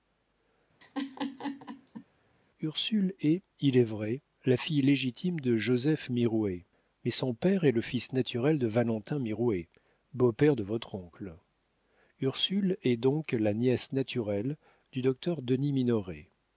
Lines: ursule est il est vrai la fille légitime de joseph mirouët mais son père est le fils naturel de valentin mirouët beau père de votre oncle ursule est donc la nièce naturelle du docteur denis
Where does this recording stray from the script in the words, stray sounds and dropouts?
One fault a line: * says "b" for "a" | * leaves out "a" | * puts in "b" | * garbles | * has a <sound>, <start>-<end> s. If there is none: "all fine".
* has a laugh, 0.8-2.0 s